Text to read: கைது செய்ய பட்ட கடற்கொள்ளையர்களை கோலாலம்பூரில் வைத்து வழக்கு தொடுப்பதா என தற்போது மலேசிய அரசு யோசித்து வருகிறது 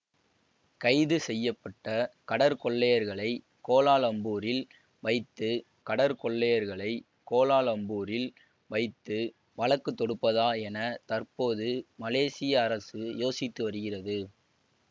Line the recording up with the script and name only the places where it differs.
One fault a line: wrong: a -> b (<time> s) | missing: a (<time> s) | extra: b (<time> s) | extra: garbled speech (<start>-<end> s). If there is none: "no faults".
extra: கடற்கொள்ளையர்களை கோலாலம்பூரில் வைத்து (5.9 s)